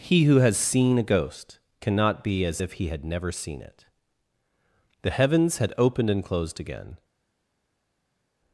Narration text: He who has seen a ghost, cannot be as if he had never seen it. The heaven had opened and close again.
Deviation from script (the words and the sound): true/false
true